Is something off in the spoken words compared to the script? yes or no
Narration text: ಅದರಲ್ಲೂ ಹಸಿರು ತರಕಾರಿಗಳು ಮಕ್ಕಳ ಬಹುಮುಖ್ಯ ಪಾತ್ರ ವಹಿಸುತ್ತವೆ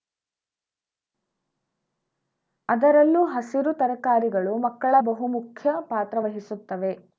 no